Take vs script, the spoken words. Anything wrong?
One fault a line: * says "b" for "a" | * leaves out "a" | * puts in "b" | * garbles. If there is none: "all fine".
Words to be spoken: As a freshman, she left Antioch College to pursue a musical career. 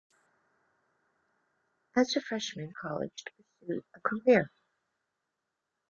* leaves out "she left Antioch"
* leaves out "musical"